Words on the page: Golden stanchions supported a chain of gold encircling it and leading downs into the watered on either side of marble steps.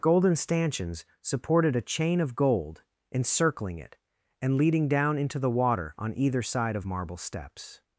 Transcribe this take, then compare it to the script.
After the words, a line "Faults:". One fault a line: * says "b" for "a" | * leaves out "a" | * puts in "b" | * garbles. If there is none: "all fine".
Golden stanchions supported a chain of gold encircling it and leading down into the water on either side of marble steps.
Faults:
* says "down" for "downs"
* says "water" for "watered"